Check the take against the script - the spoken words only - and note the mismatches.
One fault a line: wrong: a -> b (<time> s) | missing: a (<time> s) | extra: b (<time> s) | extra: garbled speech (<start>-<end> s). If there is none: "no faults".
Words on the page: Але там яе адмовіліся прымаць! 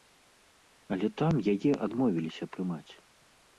no faults